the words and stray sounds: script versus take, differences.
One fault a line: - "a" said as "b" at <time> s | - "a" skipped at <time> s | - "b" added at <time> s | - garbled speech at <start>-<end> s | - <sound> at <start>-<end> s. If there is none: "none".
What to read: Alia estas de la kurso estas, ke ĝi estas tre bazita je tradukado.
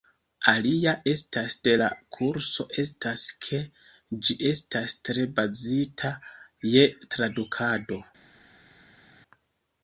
none